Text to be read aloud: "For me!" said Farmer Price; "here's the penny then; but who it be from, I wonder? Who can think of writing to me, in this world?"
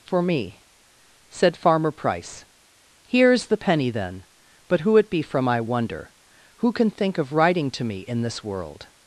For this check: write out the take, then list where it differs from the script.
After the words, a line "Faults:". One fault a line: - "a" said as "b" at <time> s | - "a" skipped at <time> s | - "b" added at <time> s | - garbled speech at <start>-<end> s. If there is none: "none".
"For me!" said Farmer Price; "here's the penny then; but who it be from, I wonder? Who can think of writing to me, in this world?"
Faults:
none